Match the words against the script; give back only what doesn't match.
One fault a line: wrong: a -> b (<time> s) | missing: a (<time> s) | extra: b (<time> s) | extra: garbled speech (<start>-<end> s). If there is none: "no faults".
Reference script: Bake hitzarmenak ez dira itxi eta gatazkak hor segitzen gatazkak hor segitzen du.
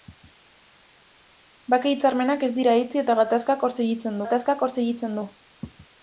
no faults